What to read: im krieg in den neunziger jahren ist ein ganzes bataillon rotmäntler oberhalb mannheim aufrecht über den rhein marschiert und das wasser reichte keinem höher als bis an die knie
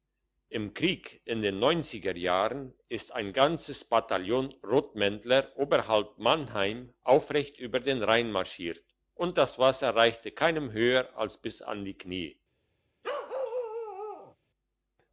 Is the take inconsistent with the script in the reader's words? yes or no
no